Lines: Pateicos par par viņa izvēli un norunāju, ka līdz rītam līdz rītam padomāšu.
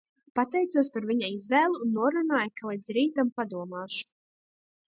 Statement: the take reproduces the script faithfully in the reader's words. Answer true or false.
false